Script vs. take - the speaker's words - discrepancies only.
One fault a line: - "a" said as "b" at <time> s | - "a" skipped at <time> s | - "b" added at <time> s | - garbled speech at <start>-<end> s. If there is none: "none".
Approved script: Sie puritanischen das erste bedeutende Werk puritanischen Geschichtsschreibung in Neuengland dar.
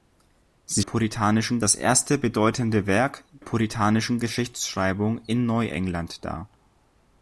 none